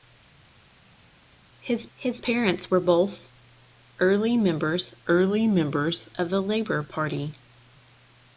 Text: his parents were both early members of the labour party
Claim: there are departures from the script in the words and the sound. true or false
true